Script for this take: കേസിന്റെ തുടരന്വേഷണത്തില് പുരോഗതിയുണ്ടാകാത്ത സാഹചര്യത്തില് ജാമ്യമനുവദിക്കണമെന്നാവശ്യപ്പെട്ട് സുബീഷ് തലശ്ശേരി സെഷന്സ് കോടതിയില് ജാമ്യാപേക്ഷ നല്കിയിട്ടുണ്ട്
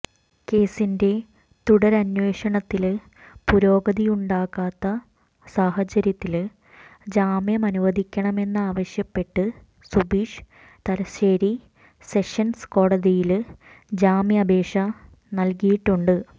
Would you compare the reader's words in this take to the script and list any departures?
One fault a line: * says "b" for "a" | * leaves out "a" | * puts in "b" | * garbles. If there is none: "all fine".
all fine